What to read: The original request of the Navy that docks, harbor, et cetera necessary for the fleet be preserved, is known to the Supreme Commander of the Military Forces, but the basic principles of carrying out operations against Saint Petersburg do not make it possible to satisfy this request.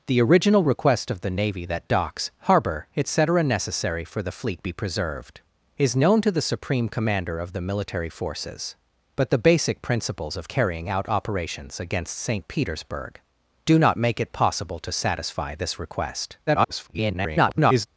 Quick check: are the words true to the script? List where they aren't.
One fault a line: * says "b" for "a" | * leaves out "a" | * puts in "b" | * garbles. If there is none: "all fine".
* garbles